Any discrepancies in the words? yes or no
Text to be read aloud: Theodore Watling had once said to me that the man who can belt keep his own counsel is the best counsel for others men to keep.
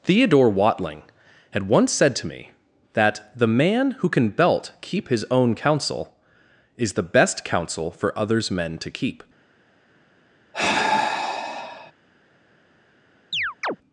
no